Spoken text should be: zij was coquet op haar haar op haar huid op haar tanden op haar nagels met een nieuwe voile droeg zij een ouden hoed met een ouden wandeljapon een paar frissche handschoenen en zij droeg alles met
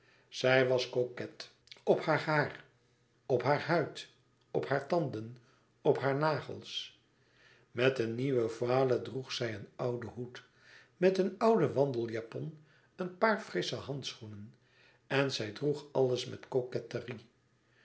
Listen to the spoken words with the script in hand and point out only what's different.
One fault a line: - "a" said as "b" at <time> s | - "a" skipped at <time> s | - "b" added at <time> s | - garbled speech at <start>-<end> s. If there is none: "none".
none